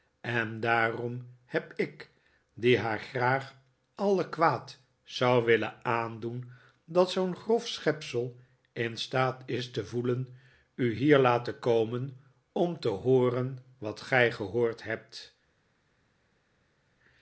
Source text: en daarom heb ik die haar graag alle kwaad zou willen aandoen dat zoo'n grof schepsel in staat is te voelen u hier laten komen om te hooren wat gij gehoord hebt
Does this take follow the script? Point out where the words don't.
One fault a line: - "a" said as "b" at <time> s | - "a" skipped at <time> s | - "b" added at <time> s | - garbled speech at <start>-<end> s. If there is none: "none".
none